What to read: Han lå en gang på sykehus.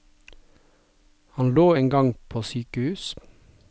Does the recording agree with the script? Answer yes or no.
yes